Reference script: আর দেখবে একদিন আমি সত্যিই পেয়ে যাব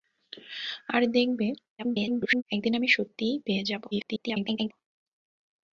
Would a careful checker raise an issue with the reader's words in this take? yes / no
yes